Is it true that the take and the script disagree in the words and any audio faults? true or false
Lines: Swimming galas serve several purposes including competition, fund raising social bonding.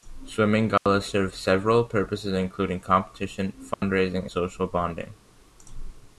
true